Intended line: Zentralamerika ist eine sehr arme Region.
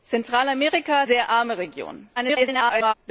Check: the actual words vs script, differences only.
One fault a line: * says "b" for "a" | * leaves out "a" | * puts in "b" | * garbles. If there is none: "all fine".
* leaves out "ist eine"
* garbles